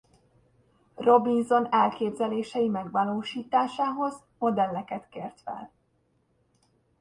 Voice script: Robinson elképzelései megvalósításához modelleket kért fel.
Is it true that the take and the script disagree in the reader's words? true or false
false